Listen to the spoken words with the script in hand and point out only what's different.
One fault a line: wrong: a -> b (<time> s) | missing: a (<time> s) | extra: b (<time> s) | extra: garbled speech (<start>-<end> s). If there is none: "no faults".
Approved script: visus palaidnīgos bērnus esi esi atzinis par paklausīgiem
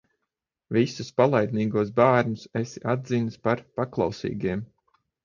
missing: esi (2.8 s)